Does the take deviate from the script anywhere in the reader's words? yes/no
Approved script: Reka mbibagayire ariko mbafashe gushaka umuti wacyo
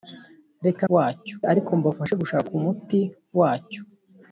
yes